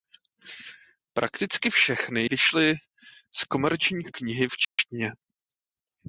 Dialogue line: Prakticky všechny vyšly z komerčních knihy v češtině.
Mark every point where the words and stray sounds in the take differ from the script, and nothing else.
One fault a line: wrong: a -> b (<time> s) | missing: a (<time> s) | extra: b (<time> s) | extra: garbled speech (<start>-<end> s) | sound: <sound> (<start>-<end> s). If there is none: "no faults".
sound: dropout (4.6-4.8 s)